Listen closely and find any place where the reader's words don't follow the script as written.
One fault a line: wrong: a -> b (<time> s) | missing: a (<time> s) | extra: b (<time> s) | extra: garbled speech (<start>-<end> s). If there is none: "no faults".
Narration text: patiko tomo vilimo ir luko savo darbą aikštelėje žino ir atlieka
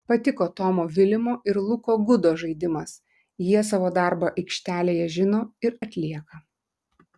extra: gudo žaidimas jie (2.1 s)